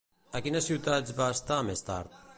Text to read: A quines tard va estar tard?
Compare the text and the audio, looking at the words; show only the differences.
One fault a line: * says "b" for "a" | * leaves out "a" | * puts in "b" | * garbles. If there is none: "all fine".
* says "ciutats" for "tard"
* puts in "més"